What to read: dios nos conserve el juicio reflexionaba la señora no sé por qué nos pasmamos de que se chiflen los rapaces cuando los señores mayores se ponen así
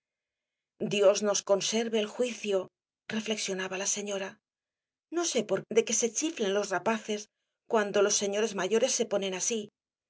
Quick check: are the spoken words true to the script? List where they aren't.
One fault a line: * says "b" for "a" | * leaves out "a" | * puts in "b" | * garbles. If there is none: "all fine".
* leaves out "qué nos pasmamos"